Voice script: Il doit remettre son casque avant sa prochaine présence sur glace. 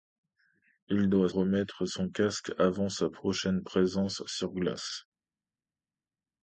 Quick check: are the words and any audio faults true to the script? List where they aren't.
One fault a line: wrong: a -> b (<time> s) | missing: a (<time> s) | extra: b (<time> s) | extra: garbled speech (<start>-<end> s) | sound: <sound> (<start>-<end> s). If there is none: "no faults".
no faults